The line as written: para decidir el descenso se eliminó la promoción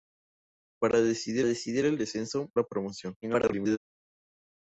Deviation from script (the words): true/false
true